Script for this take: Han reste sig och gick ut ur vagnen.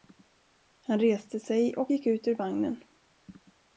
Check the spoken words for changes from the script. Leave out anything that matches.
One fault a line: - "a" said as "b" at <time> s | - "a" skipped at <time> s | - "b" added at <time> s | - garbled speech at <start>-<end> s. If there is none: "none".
none